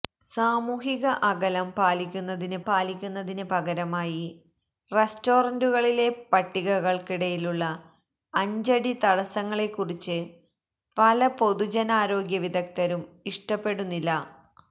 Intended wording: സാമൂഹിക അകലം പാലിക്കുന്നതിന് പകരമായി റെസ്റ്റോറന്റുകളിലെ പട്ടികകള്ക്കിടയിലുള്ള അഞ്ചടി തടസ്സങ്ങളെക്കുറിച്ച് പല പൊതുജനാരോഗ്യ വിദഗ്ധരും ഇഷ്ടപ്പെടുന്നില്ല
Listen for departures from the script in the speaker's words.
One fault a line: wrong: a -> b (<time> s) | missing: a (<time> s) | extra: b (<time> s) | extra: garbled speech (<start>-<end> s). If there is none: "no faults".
extra: പാലിക്കുന്നതിന് (2.6 s)